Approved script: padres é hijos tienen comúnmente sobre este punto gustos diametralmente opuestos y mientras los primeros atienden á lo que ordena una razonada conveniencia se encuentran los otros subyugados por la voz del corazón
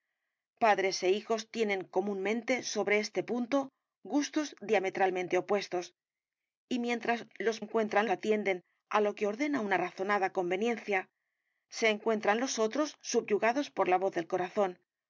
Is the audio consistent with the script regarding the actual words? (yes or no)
no